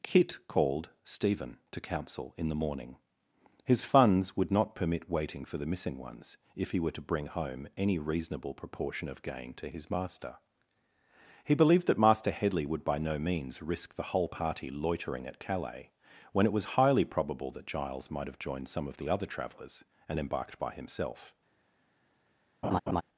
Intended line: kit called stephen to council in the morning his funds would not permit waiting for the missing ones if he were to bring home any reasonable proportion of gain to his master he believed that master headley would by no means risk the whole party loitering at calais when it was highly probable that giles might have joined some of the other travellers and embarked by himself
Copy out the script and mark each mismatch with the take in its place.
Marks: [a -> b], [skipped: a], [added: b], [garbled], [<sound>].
kit called stephen to council in the morning his funds would not permit waiting for the missing ones if he were to bring home any reasonable proportion of gain to his master he believed that master headley would by no means risk the whole party loitering at calais when it was highly probable that giles might have joined some of the other travellers and embarked by himself [laugh]